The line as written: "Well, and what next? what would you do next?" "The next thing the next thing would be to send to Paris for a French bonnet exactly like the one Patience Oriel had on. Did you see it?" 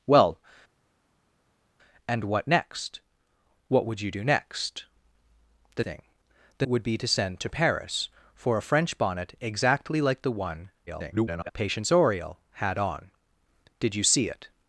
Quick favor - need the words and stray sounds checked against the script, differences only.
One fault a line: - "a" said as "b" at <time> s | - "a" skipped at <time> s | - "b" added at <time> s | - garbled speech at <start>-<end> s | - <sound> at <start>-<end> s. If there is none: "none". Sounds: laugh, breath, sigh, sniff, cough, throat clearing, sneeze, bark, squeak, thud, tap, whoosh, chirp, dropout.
- "next" skipped at 5.8 s
- "next thing" skipped at 6.7 s
- garbled speech at 10.9-11.5 s